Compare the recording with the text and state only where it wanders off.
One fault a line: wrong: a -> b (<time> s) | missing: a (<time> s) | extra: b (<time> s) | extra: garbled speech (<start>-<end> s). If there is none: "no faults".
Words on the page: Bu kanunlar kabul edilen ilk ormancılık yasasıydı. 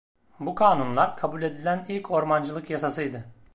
no faults